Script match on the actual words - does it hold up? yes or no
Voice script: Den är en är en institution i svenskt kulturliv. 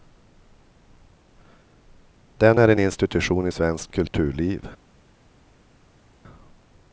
no